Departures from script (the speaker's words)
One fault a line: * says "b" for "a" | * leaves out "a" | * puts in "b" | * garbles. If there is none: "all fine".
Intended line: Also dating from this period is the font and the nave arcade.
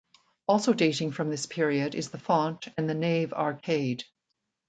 all fine